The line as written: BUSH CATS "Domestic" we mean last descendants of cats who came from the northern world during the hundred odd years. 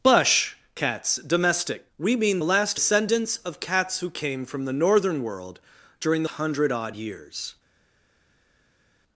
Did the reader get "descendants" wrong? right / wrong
right